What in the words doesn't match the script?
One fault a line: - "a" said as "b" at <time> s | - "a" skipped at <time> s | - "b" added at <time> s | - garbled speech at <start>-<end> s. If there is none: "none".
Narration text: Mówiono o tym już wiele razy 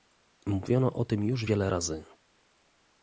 none